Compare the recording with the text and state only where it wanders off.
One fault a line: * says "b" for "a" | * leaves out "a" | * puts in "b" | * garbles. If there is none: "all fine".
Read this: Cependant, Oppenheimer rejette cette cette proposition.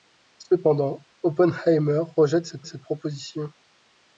all fine